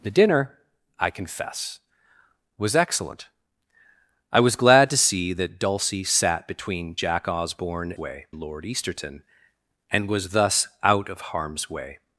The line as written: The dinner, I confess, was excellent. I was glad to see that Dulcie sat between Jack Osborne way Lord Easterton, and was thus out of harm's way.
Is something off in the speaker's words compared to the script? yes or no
no